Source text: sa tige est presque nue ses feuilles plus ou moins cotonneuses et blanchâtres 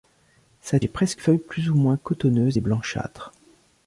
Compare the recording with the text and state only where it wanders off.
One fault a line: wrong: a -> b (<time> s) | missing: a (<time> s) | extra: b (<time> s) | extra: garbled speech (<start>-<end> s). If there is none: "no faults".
missing: tige (0.8 s)
missing: nue ses (1.2 s)